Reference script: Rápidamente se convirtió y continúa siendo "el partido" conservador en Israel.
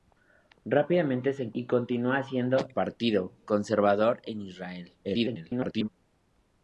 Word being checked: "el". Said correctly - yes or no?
no